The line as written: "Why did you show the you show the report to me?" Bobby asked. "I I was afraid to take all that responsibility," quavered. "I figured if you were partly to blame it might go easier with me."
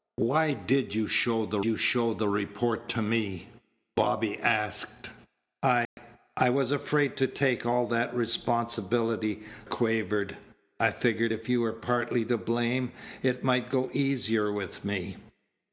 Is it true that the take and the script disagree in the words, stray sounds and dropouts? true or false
true